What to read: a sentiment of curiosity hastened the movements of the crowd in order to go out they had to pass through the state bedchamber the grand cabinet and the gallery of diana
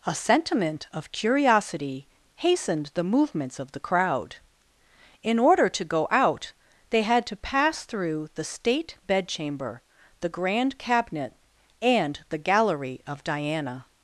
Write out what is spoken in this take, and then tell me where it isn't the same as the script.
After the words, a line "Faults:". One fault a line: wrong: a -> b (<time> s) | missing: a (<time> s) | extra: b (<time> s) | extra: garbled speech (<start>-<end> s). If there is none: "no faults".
a sentiment of curiosity hastened the movements of the crowd in order to go out they had to pass through the state bedchamber the grand cabinet and the gallery of diana
Faults:
no faults